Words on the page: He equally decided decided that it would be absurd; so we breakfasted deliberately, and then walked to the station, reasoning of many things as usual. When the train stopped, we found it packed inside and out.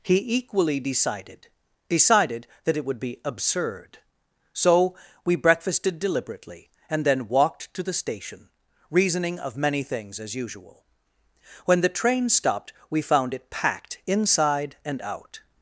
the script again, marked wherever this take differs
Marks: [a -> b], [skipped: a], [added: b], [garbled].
He equally decided decided that it would be absurd; so we breakfasted deliberately, and then walked to the station, reasoning of many things as usual. When the train stopped, we found it packed inside and out.